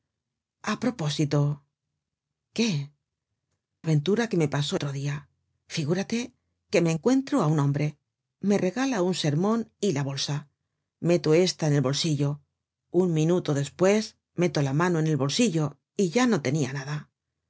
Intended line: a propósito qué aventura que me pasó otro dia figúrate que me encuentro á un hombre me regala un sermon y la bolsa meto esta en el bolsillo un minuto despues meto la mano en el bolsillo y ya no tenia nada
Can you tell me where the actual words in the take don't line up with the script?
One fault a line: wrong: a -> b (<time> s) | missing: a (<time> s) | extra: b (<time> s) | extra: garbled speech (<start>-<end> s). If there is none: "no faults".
no faults